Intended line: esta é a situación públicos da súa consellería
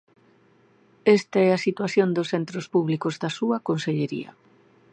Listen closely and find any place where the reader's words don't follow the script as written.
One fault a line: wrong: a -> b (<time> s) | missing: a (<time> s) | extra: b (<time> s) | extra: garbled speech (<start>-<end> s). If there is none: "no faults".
extra: dos centros (2.1 s)